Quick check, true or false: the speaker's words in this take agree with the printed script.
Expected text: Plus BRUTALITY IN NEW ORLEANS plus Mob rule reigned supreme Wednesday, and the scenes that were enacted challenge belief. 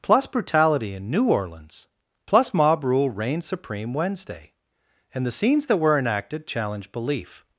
true